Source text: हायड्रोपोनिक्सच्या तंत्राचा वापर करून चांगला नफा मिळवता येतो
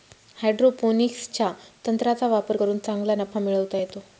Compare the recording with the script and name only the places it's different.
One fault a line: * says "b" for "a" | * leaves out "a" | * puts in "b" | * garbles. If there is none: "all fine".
all fine